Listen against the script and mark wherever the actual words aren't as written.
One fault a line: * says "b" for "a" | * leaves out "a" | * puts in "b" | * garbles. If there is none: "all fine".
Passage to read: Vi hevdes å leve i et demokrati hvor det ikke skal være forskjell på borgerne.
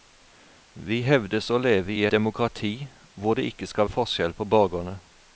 * leaves out "et"
* leaves out "være"